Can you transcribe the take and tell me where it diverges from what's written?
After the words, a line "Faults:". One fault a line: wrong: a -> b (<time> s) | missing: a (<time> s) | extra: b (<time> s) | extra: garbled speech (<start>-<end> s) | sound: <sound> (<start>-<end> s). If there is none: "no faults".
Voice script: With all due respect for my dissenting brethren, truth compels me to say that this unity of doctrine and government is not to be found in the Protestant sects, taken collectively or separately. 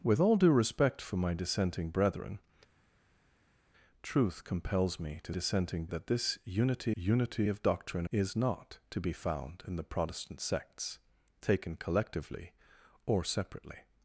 With all due respect for my dissenting brethren, truth compels me to dissenting that this unity unity of doctrine is not to be found in the Protestant sects, taken collectively or separately.
Faults:
wrong: say -> dissenting (5.3 s)
extra: unity (6.9 s)
missing: and government (8.0 s)